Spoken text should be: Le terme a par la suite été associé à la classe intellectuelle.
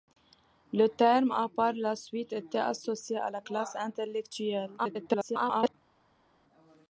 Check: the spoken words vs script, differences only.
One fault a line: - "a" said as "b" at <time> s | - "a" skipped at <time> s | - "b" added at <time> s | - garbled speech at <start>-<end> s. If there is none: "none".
- garbled speech at 4.8-5.7 s